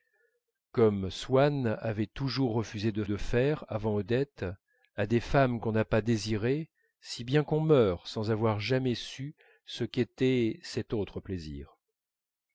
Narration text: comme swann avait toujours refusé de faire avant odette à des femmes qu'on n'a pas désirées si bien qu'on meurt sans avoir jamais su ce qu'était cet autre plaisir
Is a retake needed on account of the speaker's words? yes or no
yes